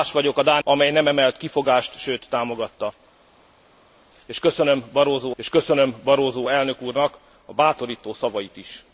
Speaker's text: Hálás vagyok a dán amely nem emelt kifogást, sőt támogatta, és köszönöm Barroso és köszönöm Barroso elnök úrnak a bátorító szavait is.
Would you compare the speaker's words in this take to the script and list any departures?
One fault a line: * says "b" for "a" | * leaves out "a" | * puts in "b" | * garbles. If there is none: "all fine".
all fine